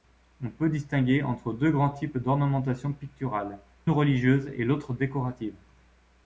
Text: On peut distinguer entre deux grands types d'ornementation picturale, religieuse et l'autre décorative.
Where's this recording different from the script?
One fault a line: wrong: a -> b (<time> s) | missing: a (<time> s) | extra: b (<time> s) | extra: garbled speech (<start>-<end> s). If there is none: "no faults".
no faults